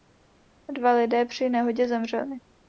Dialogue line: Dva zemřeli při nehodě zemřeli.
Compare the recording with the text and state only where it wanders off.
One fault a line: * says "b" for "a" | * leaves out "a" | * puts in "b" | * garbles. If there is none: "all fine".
* says "lidé" for "zemřeli"